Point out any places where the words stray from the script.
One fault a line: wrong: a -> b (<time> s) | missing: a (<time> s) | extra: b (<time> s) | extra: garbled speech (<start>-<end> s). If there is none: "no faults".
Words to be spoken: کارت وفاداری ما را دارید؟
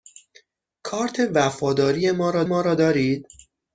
extra: ما را (2.4 s)